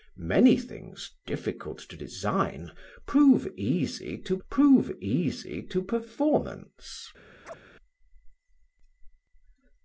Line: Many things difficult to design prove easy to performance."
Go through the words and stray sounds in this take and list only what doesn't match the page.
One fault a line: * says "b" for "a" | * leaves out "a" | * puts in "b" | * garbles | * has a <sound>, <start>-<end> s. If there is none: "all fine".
* puts in "prove easy to"
* has a chirp, 7.4-7.6 s